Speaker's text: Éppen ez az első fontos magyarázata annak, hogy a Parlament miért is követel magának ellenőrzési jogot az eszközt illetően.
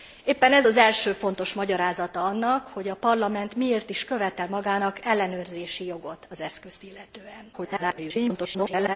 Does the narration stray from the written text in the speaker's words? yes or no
yes